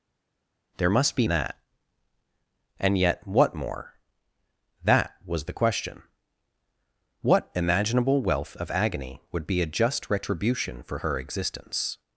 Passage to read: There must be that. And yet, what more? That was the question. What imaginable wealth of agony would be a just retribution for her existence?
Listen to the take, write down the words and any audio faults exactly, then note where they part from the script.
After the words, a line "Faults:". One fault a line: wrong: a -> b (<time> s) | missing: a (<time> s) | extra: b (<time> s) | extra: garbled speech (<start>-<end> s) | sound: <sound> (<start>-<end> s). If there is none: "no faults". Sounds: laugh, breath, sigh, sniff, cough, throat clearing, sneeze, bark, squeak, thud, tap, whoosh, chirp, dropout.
There must be that. And yet, what more? That was the question. What imaginable wealth of agony would be a just retribution for her existence?
Faults:
no faults